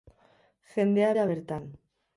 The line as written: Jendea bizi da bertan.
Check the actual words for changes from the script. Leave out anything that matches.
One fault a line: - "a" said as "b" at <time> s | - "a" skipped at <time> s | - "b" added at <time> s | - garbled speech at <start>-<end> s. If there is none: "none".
- "bizi" skipped at 1.1 s